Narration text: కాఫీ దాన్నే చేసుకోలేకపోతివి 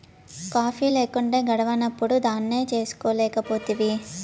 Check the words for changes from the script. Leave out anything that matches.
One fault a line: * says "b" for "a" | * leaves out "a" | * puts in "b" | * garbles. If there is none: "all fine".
* puts in "లేకుంటే గడవనప్పుడు"